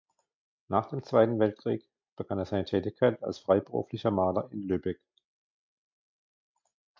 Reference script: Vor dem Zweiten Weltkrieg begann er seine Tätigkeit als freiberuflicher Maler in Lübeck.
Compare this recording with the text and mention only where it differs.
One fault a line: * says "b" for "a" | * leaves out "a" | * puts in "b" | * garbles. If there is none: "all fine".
* says "Nach" for "Vor"